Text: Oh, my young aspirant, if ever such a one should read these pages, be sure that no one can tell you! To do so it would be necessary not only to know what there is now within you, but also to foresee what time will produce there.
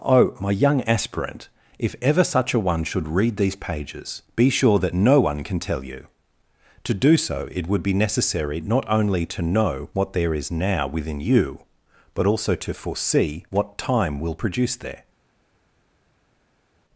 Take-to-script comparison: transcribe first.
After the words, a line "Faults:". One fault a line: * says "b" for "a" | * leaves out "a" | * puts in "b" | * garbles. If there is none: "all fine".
Oh, my young aspirant, if ever such a one should read these pages, be sure that no one can tell you! To do so it would be necessary not only to know what there is now within you, but also to foresee what time will produce there.
Faults:
all fine